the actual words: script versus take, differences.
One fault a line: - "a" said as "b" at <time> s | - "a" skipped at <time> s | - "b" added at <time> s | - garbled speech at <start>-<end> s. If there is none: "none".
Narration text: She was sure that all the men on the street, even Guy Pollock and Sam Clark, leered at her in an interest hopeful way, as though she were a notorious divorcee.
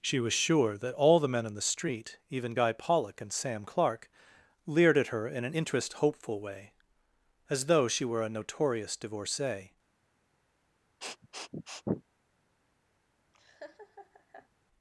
none